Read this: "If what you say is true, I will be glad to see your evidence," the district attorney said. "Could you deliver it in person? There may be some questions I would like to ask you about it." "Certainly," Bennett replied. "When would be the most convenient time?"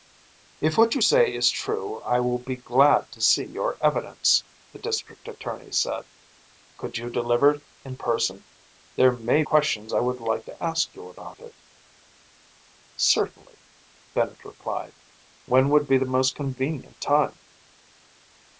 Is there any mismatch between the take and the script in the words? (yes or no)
yes